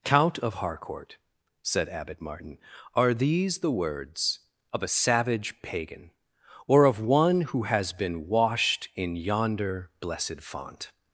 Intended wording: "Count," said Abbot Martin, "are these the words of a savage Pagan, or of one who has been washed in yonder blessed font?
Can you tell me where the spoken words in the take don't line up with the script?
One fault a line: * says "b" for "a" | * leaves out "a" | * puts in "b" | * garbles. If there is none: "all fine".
* puts in "of Harcourt"